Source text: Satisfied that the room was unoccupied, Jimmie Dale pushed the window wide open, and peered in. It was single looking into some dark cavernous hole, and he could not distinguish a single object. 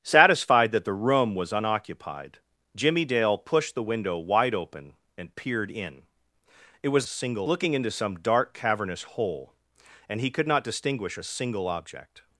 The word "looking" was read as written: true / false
true